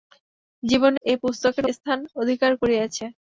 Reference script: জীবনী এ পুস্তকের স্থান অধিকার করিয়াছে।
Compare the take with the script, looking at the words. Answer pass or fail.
pass